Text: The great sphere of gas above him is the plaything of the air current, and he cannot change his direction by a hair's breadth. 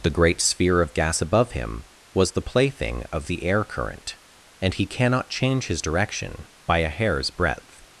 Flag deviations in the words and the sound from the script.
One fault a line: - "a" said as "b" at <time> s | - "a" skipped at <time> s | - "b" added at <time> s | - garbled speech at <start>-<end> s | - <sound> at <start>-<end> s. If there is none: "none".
- "is" said as "was" at 2.1 s